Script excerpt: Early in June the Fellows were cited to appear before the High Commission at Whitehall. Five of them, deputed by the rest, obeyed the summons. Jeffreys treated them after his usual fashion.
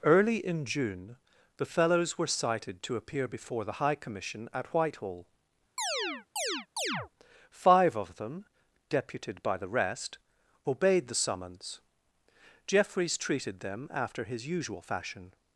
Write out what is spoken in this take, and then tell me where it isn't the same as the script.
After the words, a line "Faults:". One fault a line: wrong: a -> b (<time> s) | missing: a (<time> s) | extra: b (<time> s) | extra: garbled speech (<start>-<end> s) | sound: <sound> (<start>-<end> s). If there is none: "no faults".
Early in June the Fellows were cited to appear before the High Commission at Whitehall. Five of them, deputed by the rest, obeyed the summons. Jeffreys treated them after his usual fashion.
Faults:
sound: chirp (5.8-7.1 s)